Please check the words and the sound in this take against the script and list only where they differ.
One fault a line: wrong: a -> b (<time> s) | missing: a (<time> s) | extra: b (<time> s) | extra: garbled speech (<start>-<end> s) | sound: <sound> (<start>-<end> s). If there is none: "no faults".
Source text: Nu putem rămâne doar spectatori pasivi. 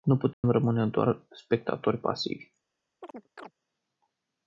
sound: dropout (0.3-0.4 s)
sound: chirp (3.0-3.5 s)